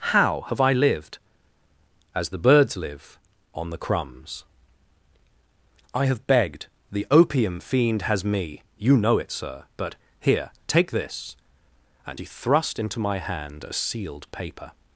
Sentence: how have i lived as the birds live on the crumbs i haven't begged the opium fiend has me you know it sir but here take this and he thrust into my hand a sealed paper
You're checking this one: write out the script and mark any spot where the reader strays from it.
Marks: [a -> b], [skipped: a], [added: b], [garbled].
how have i lived as the birds live on the crumbs i [haven't -> have] begged the opium fiend has me you know it sir but here take this and he thrust into my hand a sealed paper